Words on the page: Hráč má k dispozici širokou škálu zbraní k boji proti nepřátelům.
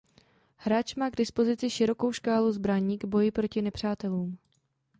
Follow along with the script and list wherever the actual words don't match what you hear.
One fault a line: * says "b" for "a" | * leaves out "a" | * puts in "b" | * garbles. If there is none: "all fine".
all fine